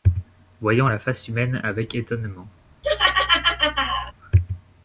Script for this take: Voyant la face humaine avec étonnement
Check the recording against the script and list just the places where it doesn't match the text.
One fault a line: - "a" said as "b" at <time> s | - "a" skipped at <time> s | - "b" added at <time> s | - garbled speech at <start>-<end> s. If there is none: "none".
none